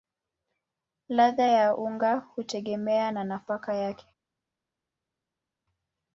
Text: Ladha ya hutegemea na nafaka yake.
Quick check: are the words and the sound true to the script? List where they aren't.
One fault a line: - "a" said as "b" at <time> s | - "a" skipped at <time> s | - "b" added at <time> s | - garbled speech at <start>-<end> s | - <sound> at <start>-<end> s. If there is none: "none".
- "unga" added at 1.8 s